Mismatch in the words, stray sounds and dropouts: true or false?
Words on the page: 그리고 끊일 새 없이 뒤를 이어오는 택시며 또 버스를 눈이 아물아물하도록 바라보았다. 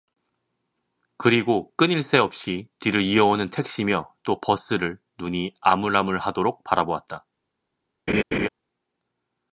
true